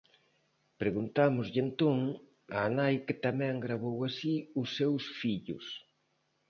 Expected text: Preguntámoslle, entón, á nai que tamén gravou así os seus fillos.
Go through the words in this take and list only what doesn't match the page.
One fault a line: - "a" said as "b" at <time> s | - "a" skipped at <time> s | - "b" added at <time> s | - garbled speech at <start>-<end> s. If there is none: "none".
none